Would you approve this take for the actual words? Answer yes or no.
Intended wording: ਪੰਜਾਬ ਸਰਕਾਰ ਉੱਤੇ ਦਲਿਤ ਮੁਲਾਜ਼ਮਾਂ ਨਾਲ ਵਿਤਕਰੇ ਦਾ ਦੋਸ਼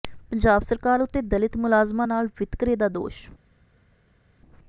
yes